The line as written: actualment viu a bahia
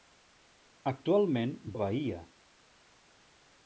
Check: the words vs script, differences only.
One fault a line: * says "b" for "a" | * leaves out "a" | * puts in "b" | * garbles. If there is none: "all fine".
* leaves out "viu"